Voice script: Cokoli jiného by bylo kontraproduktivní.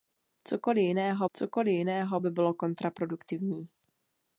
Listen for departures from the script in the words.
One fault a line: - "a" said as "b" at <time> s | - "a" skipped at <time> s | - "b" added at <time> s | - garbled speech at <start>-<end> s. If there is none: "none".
- "cokoli jiného" added at 1.3 s